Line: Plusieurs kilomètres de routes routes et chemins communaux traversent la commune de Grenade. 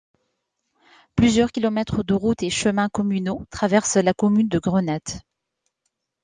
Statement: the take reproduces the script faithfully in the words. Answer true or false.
false